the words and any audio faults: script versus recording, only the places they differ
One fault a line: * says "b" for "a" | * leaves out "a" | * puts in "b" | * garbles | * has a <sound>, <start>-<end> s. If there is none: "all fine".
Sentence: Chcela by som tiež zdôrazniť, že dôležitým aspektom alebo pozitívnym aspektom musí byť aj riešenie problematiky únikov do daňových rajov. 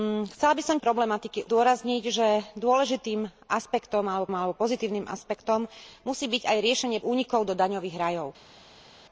* says "problematiky" for "tiež"
* puts in "alebo"
* leaves out "problematiky"